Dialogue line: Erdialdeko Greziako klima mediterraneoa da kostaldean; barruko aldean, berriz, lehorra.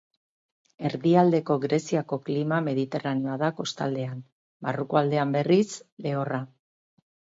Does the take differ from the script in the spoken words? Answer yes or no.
no